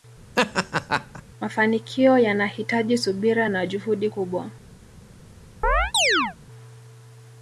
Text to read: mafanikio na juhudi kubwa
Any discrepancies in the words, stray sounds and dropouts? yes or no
yes